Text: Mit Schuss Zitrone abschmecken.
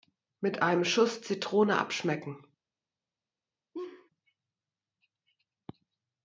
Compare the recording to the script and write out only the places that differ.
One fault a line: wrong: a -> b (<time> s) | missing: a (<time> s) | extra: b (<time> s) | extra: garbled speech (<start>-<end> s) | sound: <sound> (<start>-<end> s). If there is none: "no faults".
extra: einem (0.6 s)
sound: laugh (3.7-4.1 s)